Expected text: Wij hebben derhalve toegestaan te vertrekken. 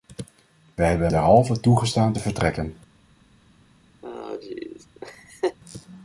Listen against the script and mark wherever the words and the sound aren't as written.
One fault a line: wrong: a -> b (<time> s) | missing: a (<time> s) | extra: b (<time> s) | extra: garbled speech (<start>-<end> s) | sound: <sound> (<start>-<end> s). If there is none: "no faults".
sound: laugh (4.0-5.6 s)